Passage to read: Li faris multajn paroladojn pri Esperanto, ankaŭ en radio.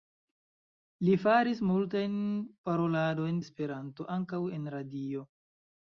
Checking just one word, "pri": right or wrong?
wrong